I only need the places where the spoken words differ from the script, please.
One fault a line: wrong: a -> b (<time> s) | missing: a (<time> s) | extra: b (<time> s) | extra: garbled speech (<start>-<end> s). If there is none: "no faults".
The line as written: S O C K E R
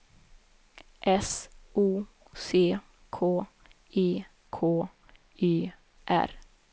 extra: K E (4.5 s)